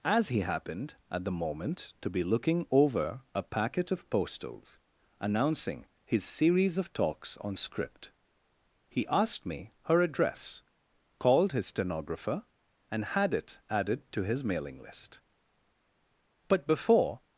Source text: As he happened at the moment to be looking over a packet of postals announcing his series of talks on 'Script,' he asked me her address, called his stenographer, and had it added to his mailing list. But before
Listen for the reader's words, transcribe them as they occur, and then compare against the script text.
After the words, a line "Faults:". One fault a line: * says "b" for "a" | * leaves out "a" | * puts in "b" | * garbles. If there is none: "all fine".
As he happened at the moment to be looking over a packet of postals announcing his series of talks on 'Script,' he asked me her address, called his stenographer, and had it added to his mailing list. But before
Faults:
all fine